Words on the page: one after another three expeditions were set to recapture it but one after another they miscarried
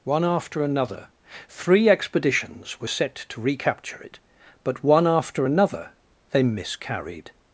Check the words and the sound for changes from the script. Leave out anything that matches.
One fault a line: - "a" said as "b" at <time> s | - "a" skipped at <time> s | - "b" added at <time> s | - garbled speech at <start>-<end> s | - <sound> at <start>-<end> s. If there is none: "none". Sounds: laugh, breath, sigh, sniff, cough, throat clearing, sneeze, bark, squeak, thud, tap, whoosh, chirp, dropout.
none